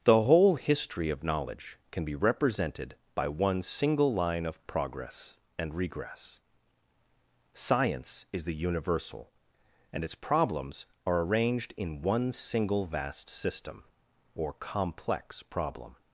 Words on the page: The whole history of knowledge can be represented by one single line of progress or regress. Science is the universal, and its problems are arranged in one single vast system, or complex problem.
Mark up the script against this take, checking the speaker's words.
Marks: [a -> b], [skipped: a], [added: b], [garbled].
The whole history of knowledge can be represented by one single line of progress [or -> and] regress. Science is the universal, and its problems are arranged in one single vast system, or complex problem.